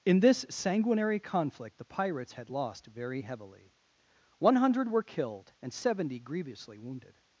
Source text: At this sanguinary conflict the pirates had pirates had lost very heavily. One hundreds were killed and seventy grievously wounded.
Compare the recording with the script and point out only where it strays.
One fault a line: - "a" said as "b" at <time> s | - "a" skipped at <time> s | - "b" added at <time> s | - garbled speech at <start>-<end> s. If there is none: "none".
- "At" said as "In" at 0.0 s
- "pirates had" skipped at 2.5 s
- "hundreds" said as "hundred" at 4.5 s